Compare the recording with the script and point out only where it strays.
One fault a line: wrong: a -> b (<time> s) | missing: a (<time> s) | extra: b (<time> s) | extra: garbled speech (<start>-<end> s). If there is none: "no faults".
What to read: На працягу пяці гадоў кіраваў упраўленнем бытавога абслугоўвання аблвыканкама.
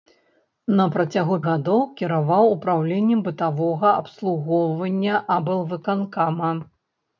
missing: пяці (1.4 s)